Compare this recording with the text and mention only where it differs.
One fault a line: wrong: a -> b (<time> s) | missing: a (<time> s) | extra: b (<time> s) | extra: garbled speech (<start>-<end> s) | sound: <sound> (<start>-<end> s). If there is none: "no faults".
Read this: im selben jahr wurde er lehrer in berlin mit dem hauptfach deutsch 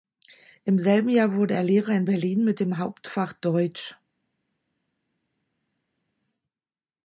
no faults